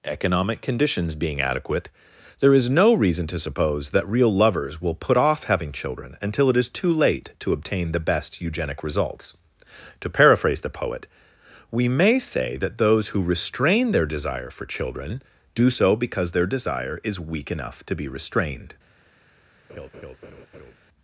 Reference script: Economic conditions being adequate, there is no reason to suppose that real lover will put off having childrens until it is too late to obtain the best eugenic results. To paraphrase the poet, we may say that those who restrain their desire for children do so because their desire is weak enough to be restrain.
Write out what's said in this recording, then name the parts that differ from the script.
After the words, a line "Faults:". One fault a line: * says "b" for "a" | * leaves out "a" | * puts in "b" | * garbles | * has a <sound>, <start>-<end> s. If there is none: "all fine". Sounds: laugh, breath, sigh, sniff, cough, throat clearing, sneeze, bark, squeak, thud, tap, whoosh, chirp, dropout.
Economic conditions being adequate, there is no reason to suppose that real lovers will put off having children until it is too late to obtain the best eugenic results. To paraphrase the poet, we may say that those who restrain their desire for children do so because their desire is weak enough to be restrained.
Faults:
* says "lovers" for "lover"
* says "children" for "childrens"
* says "restrained" for "restrain"
* has a laugh, 19.7-20.8 s